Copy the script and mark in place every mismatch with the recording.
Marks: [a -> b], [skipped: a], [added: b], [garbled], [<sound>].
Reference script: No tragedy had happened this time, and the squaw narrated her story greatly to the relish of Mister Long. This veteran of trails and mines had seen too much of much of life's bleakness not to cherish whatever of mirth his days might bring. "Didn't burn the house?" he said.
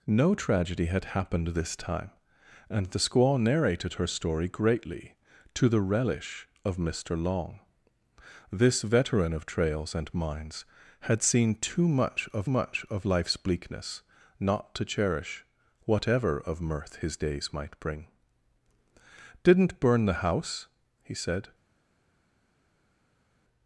No tragedy had happened this time, and the squaw narrated her story greatly to the relish of Mister Long. This veteran of trails and mines had seen too much of much of life's bleakness not to cherish whatever of mirth his days might bring. "Didn't burn the house?" he said.